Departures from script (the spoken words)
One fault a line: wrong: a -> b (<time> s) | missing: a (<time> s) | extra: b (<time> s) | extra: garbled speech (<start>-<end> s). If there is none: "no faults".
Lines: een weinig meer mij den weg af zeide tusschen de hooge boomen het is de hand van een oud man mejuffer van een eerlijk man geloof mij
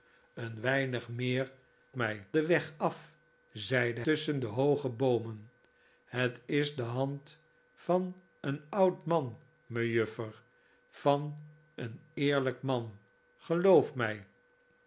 no faults